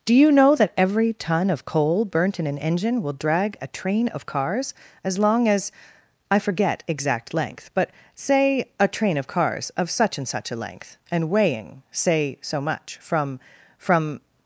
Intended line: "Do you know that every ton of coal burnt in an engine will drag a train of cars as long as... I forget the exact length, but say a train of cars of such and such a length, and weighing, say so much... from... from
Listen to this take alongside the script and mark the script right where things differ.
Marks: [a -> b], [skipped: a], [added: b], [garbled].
"Do you know that every ton of coal burnt in an engine will drag a train of cars as long as... I forget [skipped: the] exact length, but say a train of cars of such and such a length, and weighing, say so much... from... from